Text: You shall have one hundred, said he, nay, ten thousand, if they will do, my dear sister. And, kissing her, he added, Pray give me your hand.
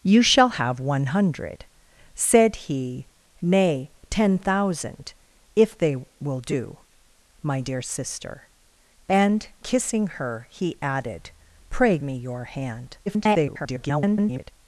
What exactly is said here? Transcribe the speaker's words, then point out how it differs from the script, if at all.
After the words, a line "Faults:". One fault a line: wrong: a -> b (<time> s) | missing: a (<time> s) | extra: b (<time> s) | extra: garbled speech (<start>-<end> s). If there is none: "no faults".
You shall have one hundred, said he, nay, ten thousand, if they will do, my dear sister. And, kissing her, he added, Pray me your hand. [garbled]
Faults:
missing: give (12.0 s)
extra: garbled speech (13.1-14.5 s)